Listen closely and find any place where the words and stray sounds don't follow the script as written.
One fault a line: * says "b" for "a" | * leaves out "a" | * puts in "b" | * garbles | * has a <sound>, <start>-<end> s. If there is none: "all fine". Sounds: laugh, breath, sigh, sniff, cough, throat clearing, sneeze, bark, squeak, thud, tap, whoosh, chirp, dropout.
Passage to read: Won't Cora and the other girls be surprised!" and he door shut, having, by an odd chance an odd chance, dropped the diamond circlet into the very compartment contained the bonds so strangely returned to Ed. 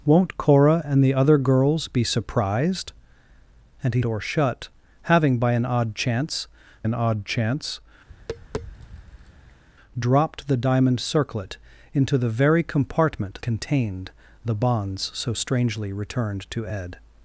* has a tap, 8.1-9.6 s